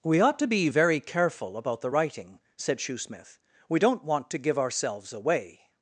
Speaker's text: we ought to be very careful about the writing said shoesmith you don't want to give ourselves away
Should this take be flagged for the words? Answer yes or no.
yes